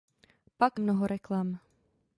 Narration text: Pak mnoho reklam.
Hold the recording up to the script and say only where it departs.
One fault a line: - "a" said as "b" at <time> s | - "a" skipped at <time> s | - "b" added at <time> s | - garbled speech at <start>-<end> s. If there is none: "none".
none